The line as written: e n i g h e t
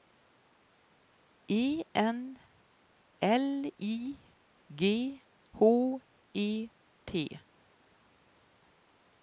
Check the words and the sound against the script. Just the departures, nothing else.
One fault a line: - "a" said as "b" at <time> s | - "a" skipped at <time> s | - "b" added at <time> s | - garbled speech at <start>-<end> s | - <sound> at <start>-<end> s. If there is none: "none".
- "l" added at 3.2 s